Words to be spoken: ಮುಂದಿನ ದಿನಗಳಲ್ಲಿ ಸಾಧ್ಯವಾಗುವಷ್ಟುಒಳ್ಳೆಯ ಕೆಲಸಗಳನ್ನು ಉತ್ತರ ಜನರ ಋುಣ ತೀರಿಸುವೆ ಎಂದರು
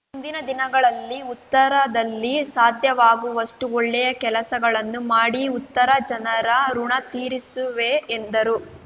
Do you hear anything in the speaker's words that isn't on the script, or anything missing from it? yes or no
yes